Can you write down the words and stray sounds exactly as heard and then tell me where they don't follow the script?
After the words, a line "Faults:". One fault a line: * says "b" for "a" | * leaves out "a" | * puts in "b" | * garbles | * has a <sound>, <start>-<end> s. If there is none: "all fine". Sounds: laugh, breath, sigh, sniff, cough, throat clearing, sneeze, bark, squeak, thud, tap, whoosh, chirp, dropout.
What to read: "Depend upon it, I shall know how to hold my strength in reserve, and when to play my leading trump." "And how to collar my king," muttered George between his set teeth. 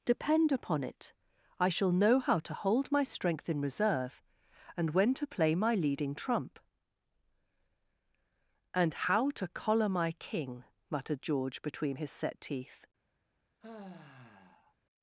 "Depend upon it, I shall know how to hold my strength in reserve, and when to play my leading trump." "And how to collar my king," muttered George between his set teeth.
Faults:
* has a sigh, 13.6-14.7 s